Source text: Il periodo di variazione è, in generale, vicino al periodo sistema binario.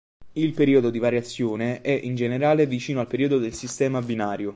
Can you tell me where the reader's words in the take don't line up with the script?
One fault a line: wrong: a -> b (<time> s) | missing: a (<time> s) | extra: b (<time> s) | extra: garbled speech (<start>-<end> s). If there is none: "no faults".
extra: del (3.4 s)